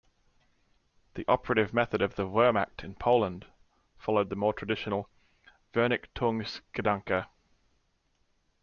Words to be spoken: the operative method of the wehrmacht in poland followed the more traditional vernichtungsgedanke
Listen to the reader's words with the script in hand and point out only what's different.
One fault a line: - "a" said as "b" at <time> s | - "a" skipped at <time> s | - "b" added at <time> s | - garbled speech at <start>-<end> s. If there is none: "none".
none